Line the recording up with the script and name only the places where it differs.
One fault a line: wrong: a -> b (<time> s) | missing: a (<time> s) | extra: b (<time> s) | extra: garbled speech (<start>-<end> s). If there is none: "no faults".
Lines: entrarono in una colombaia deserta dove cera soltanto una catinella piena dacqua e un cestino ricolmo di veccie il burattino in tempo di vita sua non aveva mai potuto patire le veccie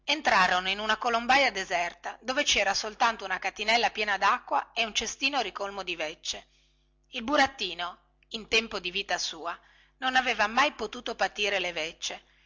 no faults